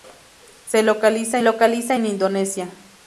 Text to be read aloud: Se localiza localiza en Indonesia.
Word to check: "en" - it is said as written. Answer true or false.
true